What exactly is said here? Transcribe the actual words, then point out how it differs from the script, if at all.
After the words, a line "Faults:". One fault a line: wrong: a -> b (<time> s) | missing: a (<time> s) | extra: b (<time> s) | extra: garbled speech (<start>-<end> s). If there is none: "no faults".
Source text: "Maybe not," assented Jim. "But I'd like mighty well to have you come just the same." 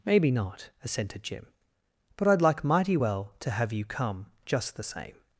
"Maybe not," assented Jim. "But I'd like mighty well to have you come just the same."
Faults:
no faults